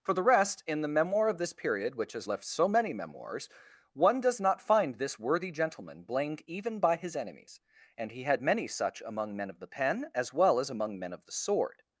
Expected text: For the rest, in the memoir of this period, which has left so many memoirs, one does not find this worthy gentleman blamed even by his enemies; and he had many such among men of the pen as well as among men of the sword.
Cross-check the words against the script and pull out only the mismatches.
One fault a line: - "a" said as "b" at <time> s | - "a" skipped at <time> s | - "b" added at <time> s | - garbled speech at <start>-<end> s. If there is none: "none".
none